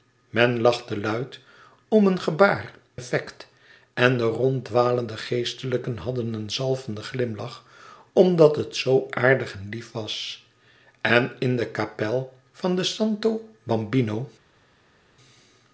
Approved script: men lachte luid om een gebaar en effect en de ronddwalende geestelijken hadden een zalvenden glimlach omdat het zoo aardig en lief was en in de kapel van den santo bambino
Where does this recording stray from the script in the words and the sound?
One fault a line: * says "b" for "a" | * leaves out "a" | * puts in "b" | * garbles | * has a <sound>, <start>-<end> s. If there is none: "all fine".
* leaves out "en"